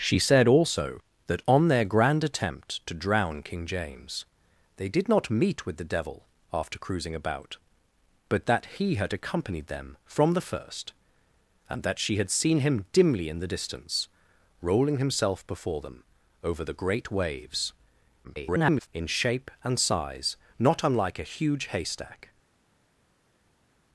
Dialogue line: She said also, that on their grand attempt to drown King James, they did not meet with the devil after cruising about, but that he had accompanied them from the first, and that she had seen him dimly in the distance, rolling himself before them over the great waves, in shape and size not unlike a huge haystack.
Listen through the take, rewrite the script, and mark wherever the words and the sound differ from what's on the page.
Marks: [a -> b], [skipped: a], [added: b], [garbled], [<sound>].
She said also, that on their grand attempt to drown King James, they did not meet with the devil after cruising about, but that he had accompanied them from the first, and that she had seen him dimly in the distance, rolling himself before them over the great waves, [garbled] in shape and size not unlike a huge haystack.